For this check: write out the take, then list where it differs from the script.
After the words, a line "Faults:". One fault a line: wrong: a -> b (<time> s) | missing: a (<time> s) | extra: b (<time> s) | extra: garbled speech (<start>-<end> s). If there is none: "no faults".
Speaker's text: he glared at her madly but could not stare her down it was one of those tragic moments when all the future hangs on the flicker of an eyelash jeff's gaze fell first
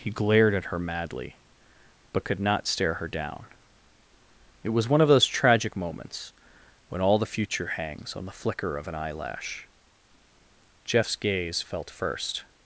he glared at her madly but could not stare her down it was one of those tragic moments when all the future hangs on the flicker of an eyelash jeff's gaze felt first
Faults:
wrong: fell -> felt (11.6 s)